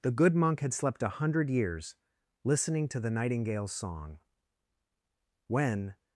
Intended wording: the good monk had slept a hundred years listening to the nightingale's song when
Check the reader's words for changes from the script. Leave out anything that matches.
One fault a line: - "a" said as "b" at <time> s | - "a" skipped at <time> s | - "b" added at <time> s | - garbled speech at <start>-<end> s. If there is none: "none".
none